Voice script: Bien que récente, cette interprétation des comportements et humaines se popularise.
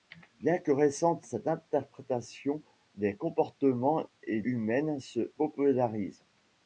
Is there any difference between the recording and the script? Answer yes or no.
no